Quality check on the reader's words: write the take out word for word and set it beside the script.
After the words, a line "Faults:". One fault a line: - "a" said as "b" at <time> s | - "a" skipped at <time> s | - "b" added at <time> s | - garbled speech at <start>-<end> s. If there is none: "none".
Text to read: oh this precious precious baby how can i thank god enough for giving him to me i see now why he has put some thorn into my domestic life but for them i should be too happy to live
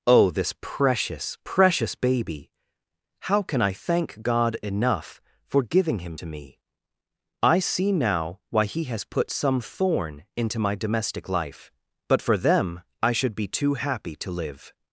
oh this precious precious baby how can i thank god enough for giving him to me i see now why he has put some thorn into my domestic life but for them i should be too happy to live
Faults:
none